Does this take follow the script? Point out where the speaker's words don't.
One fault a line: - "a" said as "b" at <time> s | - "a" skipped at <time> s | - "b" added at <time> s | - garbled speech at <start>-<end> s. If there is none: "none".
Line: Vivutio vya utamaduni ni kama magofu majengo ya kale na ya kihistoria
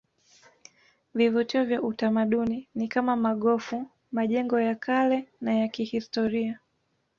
none